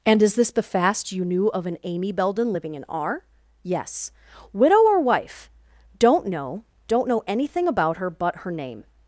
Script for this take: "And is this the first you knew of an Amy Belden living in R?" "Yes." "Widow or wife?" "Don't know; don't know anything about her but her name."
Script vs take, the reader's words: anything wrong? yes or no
yes